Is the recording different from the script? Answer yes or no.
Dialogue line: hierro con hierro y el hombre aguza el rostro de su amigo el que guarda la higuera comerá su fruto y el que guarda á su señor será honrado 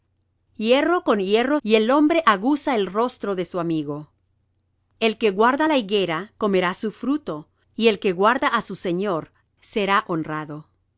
no